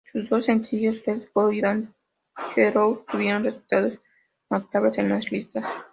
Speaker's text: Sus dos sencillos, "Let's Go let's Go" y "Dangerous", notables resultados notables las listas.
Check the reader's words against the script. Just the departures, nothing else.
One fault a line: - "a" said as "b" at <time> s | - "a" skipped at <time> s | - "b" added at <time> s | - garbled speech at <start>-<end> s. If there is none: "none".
- "let's Go" skipped at 1.5 s
- "notables" said as "tuvieron" at 3.1 s
- "en" added at 5.0 s